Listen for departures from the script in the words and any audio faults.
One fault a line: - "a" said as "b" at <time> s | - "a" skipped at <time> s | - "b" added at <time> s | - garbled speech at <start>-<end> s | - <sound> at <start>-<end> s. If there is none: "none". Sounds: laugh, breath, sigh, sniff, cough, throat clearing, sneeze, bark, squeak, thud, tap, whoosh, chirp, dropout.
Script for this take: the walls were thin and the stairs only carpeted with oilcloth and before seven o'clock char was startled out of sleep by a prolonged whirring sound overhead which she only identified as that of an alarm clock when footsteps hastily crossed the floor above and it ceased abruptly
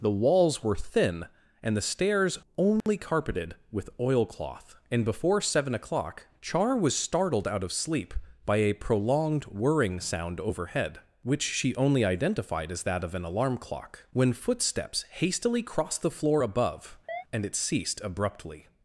- dropout at 2.8-2.9 s
- chirp at 17.1-17.2 s